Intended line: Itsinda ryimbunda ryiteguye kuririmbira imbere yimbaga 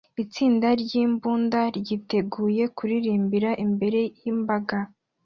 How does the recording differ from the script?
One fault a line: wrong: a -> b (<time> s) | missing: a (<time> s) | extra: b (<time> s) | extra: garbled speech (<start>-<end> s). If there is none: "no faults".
no faults